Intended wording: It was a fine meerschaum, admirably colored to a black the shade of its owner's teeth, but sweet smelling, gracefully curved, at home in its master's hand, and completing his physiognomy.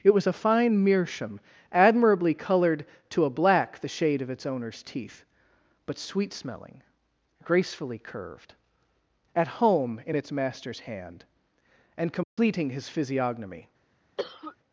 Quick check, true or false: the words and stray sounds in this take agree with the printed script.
false